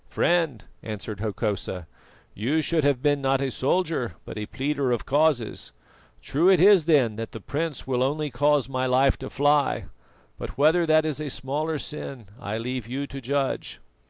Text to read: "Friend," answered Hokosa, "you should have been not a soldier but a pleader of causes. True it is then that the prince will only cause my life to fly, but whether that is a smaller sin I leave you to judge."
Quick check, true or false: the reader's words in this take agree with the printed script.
true